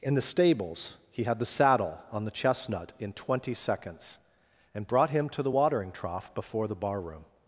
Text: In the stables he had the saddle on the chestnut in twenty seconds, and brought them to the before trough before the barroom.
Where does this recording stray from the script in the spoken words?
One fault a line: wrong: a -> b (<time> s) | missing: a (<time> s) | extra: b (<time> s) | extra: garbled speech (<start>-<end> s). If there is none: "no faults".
wrong: them -> him (5.1 s)
wrong: before -> watering (5.5 s)